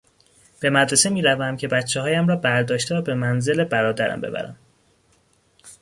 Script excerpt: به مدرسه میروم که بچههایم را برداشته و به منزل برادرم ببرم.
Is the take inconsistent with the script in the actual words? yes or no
no